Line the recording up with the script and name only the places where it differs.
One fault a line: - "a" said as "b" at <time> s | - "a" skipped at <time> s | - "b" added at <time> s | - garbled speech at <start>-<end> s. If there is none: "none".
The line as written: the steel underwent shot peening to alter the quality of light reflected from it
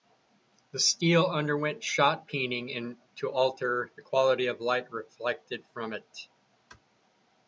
none